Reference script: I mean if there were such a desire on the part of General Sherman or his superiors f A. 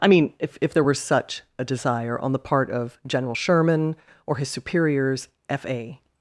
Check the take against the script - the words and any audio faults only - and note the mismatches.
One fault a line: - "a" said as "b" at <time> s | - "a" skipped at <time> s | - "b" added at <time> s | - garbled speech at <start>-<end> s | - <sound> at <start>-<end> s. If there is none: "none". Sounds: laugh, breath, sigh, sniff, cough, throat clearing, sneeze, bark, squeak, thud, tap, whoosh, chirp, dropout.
- "if" added at 0.6 s